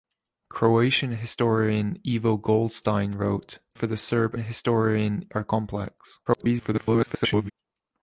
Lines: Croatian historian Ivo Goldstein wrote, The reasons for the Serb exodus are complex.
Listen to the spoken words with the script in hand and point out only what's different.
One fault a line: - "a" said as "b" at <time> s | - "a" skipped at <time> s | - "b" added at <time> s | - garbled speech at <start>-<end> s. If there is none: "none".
- "The reasons" skipped at 3.6 s
- "exodus" said as "historian" at 4.4 s
- garbled speech at 6.3-7.5 s